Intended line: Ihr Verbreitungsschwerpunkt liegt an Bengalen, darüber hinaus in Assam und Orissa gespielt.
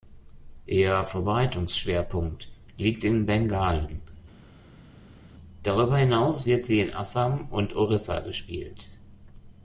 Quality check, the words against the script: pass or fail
fail